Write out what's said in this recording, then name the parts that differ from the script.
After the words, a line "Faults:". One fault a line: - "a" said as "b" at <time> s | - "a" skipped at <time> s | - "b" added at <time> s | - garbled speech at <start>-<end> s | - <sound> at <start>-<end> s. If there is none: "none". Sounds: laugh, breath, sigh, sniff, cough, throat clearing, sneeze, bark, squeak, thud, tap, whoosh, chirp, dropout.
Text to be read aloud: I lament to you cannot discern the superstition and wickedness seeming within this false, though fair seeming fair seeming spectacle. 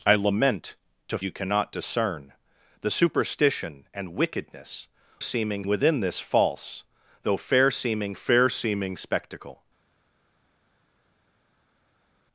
I lament to you cannot discern the superstition and wickedness seeming within this false, though fair seeming fair seeming spectacle.
Faults:
none